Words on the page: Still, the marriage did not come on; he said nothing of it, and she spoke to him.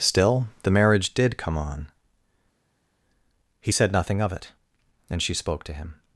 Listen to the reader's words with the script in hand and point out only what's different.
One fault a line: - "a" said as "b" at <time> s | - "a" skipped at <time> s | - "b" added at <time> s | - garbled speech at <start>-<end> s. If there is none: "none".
- "not" skipped at 1.4 s